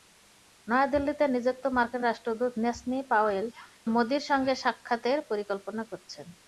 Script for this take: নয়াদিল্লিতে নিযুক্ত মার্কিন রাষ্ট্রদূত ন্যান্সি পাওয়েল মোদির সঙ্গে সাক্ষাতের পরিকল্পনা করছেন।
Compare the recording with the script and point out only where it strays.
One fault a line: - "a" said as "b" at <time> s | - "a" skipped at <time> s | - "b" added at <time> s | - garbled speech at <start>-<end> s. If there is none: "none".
none